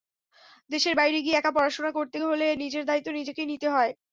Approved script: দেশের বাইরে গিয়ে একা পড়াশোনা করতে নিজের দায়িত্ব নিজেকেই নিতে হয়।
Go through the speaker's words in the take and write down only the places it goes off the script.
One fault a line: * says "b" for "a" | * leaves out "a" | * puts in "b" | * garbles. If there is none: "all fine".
* puts in "হলে"